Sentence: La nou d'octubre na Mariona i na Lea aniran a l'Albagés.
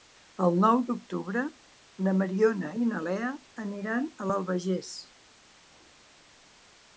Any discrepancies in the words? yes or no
yes